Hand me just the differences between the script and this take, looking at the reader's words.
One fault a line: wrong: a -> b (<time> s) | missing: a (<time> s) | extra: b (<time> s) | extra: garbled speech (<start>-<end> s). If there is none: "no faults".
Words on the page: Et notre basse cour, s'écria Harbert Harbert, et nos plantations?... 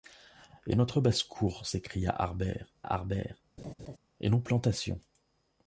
no faults